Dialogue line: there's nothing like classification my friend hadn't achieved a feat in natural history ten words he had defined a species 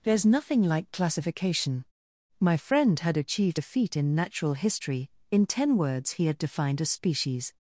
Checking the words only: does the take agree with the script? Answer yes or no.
no